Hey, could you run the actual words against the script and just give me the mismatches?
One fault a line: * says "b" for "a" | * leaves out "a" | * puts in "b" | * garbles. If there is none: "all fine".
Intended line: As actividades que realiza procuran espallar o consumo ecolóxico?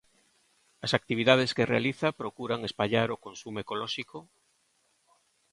all fine